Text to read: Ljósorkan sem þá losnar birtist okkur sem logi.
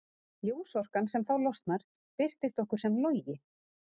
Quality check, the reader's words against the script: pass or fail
pass